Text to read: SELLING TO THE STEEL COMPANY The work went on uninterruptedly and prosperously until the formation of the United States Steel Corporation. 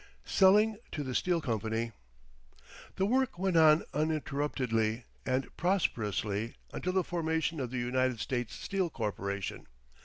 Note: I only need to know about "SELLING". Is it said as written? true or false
true